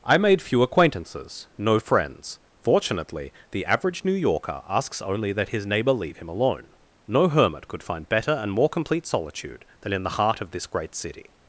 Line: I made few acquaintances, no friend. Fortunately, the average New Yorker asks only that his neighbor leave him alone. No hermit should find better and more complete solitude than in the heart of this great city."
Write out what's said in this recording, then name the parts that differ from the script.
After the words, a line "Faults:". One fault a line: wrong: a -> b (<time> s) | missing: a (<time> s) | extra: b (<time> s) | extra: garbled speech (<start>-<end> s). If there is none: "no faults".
I made few acquaintances, no friends. Fortunately, the average New Yorker asks only that his neighbor leave him alone. No hermit could find better and more complete solitude than in the heart of this great city."
Faults:
wrong: friend -> friends (1.8 s)
wrong: should -> could (7.7 s)